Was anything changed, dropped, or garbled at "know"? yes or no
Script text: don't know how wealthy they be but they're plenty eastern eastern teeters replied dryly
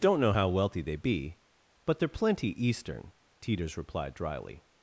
no